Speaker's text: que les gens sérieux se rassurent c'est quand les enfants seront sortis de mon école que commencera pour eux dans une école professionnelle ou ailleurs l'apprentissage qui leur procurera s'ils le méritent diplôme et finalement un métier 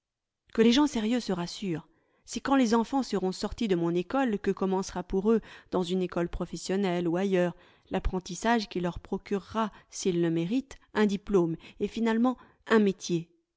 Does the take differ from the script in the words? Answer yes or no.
yes